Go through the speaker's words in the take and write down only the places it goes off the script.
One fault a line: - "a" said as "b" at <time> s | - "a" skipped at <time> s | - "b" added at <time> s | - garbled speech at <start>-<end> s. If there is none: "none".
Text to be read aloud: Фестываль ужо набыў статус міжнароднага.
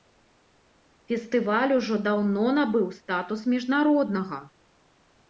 - "даўно" added at 2.1 s